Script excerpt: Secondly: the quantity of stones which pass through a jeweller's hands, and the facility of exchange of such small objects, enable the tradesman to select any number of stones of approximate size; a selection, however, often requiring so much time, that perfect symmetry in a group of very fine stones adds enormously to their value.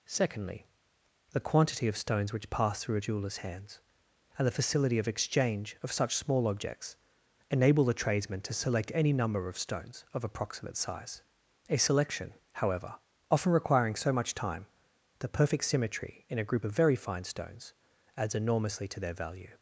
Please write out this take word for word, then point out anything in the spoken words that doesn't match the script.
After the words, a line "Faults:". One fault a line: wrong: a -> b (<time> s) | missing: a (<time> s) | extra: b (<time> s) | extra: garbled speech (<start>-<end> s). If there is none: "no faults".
Secondly: the quantity of stones which pass through a jeweller's hands, and the facility of exchange of such small objects, enable the tradesman to select any number of stones of approximate size; a selection, however, often requiring so much time, the perfect symmetry in a group of very fine stones adds enormously to their value.
Faults:
wrong: that -> the (15.2 s)